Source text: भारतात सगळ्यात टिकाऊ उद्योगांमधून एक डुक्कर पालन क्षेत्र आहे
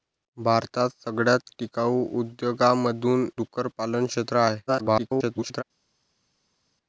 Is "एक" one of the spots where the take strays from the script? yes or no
yes